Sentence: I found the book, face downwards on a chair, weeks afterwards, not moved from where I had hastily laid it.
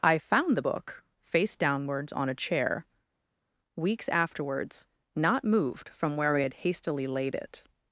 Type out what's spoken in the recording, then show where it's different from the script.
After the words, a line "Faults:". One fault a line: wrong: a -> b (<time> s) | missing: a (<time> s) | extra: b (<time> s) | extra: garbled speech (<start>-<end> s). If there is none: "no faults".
I found the book, face downwards on a chair, weeks afterwards, not moved from where I had hastily laid it.
Faults:
no faults